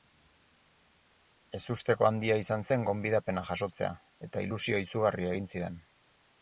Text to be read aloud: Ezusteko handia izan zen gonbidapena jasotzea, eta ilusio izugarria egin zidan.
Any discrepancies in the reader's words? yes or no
no